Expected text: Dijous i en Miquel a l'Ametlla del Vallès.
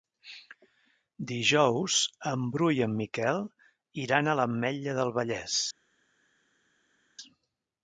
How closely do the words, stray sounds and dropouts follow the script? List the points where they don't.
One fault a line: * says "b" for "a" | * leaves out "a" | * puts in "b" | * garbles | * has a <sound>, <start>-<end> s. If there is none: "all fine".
* puts in "en Bru"
* puts in "iran"